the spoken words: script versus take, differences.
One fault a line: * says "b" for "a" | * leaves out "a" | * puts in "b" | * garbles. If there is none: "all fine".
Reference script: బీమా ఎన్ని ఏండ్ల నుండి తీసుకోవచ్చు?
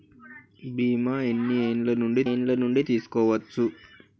* puts in "ఏండ్ల నుండి"